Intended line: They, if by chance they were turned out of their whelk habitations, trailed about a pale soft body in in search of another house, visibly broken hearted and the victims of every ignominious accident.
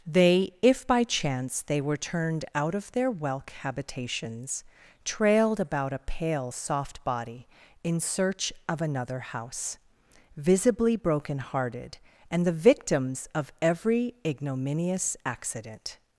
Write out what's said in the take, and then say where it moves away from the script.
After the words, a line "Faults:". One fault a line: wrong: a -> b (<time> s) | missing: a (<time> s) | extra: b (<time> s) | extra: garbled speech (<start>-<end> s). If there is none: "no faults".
They, if by chance they were turned out of their whelk habitations, trailed about a pale soft body in search of another house, visibly broken hearted and the victims of every ignominious accident.
Faults:
missing: in (8.0 s)